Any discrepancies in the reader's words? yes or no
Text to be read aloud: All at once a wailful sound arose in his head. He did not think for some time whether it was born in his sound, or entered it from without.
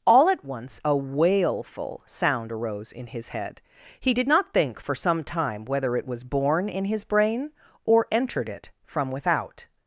yes